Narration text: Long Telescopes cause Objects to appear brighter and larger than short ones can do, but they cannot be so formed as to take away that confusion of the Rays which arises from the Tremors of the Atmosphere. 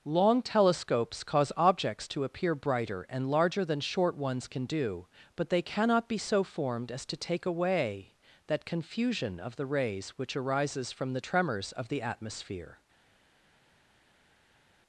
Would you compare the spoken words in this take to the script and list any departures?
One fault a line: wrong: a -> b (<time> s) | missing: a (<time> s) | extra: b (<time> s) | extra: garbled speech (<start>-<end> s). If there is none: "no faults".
no faults